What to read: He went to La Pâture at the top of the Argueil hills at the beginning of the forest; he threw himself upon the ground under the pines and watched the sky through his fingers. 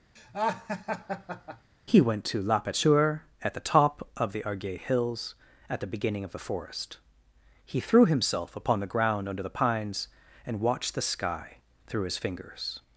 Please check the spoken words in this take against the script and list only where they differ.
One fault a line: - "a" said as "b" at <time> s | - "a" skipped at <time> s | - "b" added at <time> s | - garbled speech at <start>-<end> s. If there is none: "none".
none